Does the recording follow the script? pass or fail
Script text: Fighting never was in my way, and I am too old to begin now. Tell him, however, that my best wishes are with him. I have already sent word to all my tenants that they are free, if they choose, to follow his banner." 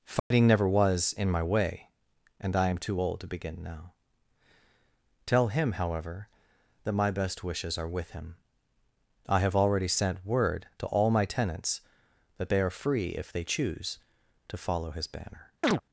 pass